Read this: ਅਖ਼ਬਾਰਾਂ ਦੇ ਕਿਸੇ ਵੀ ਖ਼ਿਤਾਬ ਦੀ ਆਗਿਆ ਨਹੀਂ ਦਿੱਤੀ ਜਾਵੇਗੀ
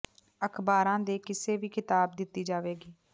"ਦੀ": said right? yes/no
no